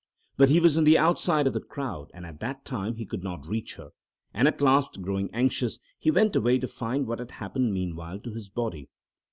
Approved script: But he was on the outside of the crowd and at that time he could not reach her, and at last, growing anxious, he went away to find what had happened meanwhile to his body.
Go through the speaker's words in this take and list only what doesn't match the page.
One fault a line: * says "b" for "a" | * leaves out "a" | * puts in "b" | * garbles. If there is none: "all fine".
all fine